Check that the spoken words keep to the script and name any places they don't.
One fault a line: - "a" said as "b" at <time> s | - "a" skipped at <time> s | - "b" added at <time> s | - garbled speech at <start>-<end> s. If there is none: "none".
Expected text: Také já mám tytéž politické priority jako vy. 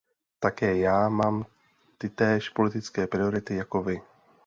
none